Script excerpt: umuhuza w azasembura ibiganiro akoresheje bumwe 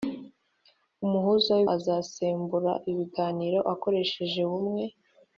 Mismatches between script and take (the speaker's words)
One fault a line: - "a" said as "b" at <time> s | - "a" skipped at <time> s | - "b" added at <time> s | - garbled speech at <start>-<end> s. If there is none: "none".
none